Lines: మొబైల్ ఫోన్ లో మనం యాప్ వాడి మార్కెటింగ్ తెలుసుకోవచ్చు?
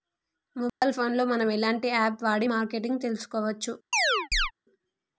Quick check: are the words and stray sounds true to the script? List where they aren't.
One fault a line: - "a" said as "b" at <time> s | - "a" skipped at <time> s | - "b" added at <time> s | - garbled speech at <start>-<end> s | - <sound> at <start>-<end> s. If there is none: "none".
- dropout at 0.7-0.8 s
- "ఎలాంటి" added at 1.5 s
- chirp at 3.9-4.5 s